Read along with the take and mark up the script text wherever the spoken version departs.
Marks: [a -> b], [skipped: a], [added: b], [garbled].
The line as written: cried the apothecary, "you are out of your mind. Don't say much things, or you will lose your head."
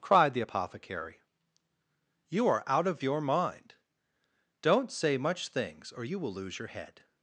cried the apothecary, "you are out of your mind. Don't say much things, or you will lose your head."